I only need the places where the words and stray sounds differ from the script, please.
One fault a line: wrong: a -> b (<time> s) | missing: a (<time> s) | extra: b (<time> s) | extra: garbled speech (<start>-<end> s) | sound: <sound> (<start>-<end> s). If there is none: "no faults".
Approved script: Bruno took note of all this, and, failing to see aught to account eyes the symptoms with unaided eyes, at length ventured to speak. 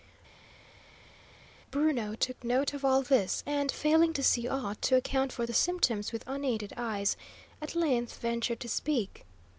wrong: eyes -> for (5.3 s)